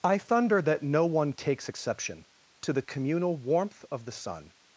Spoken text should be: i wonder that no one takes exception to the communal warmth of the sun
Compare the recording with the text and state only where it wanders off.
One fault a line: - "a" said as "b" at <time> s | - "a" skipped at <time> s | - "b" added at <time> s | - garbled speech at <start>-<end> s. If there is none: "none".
- "wonder" said as "thunder" at 0.2 s